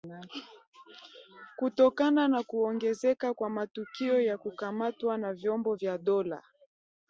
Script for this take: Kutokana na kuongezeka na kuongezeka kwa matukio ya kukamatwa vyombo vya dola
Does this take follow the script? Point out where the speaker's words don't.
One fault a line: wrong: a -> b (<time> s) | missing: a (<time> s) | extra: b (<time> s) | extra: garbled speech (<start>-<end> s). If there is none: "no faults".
missing: na kuongezeka (3.3 s)
extra: na (5.2 s)